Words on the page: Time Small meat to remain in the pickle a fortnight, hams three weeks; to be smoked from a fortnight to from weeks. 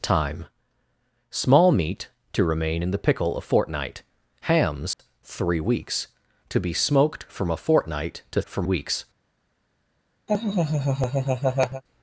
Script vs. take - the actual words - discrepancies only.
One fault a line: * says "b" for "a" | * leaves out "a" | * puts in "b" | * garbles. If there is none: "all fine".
all fine